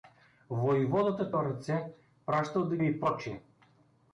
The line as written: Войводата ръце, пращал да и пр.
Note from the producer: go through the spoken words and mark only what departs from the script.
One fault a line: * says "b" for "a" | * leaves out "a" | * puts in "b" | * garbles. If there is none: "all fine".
all fine